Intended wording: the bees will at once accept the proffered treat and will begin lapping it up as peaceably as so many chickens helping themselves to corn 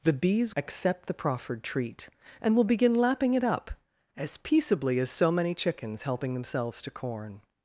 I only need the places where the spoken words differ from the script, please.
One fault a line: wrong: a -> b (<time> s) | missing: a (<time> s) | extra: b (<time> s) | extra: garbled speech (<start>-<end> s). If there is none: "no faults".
missing: will at once (0.6 s)